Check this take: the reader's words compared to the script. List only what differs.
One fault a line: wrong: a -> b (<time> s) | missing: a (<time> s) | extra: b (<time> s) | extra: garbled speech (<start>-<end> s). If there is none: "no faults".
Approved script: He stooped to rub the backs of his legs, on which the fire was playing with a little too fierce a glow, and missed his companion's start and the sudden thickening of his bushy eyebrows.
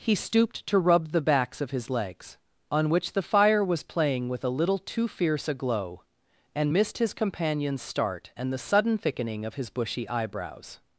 no faults